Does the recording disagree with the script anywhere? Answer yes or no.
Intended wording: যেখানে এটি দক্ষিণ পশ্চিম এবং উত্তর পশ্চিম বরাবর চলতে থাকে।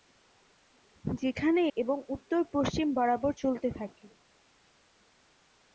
yes